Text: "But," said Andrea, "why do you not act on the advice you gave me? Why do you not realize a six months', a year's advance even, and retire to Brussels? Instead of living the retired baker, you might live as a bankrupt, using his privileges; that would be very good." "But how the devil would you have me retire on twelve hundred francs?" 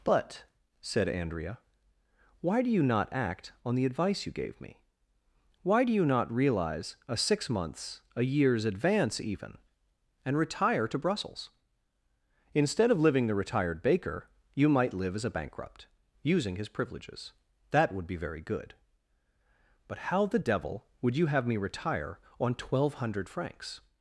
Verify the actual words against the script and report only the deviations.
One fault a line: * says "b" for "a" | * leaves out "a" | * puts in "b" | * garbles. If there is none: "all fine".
all fine